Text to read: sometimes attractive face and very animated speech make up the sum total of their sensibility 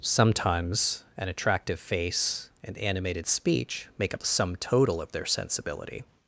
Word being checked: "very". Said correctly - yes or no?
no